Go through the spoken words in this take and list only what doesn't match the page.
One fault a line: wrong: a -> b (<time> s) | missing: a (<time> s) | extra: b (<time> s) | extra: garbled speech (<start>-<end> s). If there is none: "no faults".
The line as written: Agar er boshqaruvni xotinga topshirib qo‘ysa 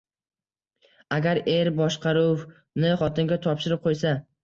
no faults